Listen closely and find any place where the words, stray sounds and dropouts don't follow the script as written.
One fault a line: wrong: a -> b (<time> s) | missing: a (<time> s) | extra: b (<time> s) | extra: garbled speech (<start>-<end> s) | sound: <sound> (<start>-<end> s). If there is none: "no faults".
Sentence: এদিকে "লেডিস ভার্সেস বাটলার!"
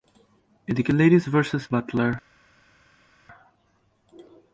no faults